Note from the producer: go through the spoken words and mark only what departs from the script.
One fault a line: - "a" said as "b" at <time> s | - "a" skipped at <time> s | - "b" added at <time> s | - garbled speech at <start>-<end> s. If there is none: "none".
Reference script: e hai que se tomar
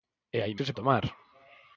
none